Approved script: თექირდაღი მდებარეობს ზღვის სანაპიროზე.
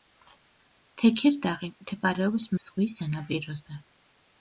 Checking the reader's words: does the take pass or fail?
pass